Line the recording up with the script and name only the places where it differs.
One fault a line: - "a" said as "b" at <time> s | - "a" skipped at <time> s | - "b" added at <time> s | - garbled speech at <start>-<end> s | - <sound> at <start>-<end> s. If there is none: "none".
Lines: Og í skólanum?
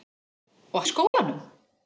- dropout at 1.1-1.1 s